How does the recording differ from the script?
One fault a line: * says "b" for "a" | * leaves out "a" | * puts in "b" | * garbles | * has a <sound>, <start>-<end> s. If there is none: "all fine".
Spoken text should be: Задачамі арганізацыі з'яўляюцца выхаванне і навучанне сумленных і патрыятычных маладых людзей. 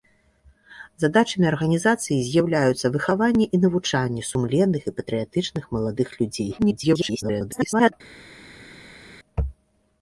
* garbles